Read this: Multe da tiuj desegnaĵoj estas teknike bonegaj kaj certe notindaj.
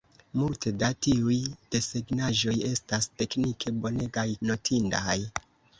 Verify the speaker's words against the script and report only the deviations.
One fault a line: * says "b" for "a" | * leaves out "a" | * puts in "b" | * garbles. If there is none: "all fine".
* leaves out "kaj certe"